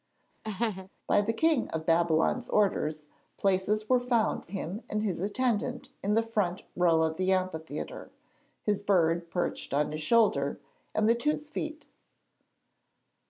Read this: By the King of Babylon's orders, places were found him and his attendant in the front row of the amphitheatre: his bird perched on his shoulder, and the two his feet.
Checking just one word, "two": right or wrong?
right